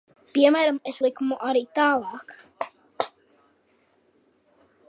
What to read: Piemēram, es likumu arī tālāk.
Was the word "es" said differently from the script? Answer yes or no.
no